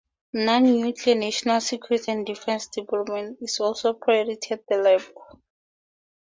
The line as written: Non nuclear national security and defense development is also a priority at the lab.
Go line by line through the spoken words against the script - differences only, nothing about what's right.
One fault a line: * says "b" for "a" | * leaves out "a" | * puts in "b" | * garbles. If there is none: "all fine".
all fine